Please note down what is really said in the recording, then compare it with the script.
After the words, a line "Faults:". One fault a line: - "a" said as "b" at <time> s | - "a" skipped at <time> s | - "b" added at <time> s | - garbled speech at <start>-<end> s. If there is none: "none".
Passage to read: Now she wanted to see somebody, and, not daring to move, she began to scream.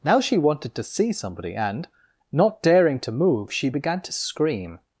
Now she wanted to see somebody, and, not daring to move, she began to scream.
Faults:
none